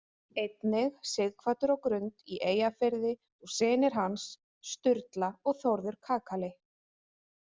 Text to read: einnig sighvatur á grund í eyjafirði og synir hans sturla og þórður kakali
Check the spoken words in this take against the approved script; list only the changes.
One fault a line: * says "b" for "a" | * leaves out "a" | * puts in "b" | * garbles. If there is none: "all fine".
all fine